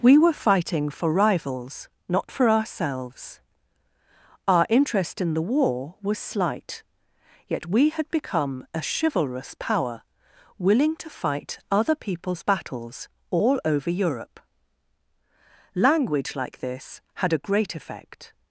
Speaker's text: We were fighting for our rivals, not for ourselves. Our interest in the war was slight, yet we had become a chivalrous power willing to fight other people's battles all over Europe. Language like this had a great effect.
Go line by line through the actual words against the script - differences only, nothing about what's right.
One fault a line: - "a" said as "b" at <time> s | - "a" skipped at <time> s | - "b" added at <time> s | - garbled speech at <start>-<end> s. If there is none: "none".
- "our" skipped at 1.1 s